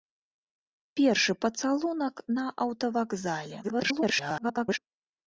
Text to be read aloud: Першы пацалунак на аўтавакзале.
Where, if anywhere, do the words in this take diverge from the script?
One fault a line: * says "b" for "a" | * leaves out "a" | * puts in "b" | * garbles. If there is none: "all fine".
* garbles